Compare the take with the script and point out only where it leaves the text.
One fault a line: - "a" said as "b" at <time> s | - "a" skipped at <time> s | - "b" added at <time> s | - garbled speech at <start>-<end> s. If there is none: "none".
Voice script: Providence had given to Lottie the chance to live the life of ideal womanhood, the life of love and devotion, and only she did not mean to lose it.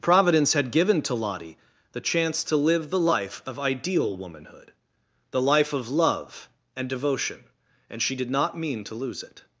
- "only" skipped at 8.0 s